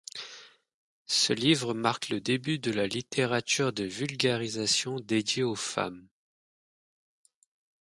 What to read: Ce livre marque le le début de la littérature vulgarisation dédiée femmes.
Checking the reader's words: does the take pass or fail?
fail